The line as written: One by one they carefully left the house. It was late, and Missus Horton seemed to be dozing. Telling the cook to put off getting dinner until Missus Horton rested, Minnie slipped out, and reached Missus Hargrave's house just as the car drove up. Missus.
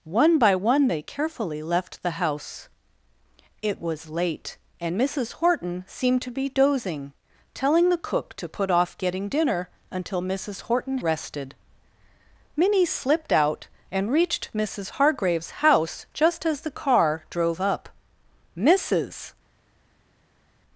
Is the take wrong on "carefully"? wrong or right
right